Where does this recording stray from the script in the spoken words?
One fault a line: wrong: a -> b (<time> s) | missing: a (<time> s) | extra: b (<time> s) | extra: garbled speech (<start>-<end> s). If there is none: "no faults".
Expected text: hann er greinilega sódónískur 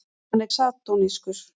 missing: greinilega (0.5 s)